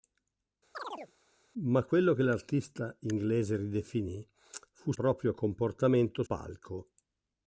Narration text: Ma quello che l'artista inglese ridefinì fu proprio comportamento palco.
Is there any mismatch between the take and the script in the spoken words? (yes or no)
no